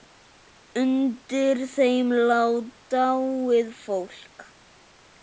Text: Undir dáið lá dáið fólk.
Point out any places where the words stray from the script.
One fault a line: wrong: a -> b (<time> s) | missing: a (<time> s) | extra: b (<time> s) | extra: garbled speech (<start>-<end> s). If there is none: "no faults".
wrong: dáið -> þeim (1.7 s)